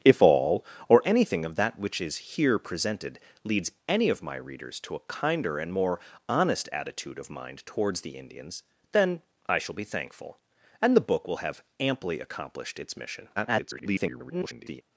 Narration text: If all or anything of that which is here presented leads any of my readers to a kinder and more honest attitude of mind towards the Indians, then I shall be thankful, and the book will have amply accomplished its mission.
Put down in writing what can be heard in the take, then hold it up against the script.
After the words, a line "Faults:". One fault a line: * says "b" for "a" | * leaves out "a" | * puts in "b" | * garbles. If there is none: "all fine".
If all or anything of that which is here presented leads any of my readers to a kinder and more honest attitude of mind towards the Indians, then I shall be thankful, and the book will have amply accomplished its mission. [garbled]
Faults:
* garbles